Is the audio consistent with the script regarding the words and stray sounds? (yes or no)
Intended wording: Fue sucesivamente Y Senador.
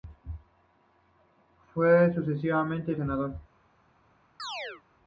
no